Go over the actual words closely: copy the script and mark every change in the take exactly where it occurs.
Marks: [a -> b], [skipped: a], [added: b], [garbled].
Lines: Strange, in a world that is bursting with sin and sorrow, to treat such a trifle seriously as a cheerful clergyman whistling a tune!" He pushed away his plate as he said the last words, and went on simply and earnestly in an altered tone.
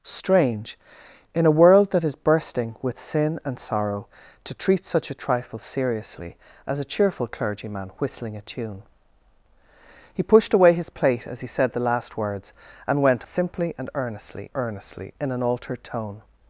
Strange, in a world that is bursting with sin and sorrow, to treat such a trifle seriously as a cheerful clergyman whistling a tune!" He pushed away his plate as he said the last words, and went [skipped: on] simply and earnestly [added: earnestly] in an altered tone.